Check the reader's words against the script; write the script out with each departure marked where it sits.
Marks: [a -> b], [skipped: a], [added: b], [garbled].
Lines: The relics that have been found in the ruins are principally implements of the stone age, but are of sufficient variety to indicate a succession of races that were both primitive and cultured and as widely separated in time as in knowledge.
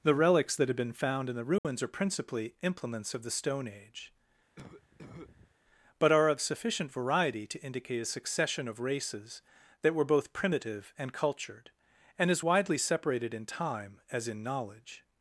The relics that have been found in the ruins are principally implements of the stone age, but are of sufficient variety to indicate a succession of races that were both primitive and cultured and as widely separated in time as in knowledge.